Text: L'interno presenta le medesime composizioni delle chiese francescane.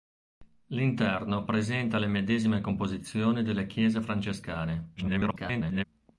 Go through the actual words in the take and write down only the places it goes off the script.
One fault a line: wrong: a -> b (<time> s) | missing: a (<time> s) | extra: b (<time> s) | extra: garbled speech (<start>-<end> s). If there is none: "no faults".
extra: garbled speech (5.0-5.8 s)